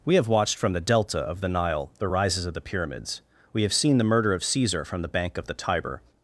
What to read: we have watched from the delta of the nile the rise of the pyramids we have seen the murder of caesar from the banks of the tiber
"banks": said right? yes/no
no